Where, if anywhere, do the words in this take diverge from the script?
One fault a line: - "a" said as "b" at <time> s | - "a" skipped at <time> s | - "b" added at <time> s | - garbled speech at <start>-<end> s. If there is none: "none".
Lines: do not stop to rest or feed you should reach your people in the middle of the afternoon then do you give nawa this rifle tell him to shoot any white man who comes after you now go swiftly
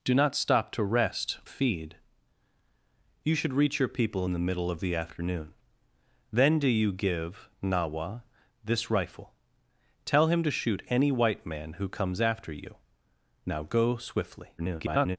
- "or" skipped at 1.4 s
- garbled speech at 14.6-15.2 s